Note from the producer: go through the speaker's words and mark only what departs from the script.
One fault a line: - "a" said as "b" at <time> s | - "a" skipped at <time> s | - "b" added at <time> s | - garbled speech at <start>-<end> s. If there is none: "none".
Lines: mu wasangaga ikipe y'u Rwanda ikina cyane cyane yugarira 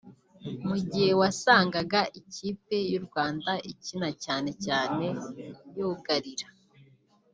- "gihe" added at 0.9 s